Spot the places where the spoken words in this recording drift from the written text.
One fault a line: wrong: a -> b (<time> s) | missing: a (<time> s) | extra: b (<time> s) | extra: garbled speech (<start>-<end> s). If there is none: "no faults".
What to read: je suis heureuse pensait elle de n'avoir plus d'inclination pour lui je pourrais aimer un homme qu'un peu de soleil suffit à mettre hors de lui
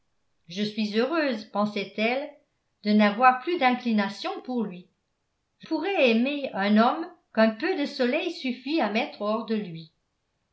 no faults